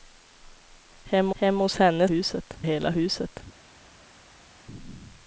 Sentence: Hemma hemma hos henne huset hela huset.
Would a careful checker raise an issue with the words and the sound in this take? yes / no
no